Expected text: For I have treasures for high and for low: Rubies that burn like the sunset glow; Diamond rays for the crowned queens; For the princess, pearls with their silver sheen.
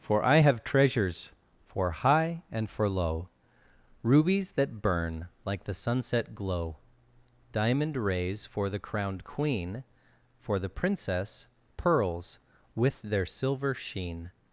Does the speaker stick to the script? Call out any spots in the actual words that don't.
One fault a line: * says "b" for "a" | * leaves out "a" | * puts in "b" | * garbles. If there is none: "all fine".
* says "queen" for "queens"